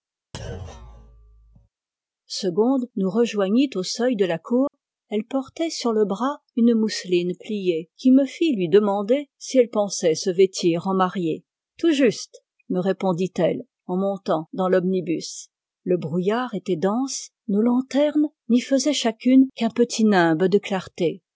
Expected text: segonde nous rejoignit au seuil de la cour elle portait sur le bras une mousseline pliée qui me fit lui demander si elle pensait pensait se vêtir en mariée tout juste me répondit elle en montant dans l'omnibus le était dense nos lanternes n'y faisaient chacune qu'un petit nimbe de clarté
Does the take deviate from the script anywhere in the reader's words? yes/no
yes